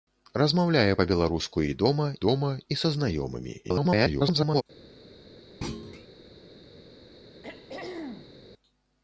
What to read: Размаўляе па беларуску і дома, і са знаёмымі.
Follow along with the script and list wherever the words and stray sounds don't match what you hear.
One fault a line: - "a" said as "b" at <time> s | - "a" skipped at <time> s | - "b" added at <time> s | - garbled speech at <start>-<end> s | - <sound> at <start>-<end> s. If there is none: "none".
- "дома" added at 2.3 s
- garbled speech at 3.6-4.6 s
- thud at 5.6-6.1 s
- throat clearing at 7.4-8.4 s